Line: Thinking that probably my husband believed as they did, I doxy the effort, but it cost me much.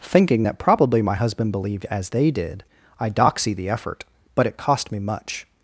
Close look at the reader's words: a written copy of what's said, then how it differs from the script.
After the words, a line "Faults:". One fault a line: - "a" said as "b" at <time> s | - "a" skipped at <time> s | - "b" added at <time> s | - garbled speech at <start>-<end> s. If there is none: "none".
Thinking that probably my husband believed as they did, I doxy the effort, but it cost me much.
Faults:
none